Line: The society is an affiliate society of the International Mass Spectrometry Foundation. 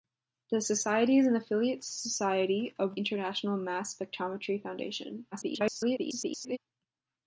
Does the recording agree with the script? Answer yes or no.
no